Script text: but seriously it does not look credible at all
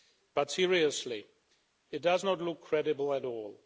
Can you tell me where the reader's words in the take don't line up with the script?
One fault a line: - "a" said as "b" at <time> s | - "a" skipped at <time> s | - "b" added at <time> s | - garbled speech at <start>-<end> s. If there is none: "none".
none